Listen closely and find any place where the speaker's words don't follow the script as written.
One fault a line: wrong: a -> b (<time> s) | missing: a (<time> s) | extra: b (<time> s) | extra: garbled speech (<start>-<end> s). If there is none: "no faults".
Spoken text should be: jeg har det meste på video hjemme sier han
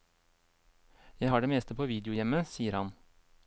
no faults